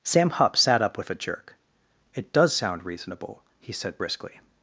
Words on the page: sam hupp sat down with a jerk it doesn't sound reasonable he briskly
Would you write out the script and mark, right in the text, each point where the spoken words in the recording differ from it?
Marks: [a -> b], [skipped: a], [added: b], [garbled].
sam hupp sat [down -> up] with a jerk it [doesn't -> does] sound reasonable he [added: said] briskly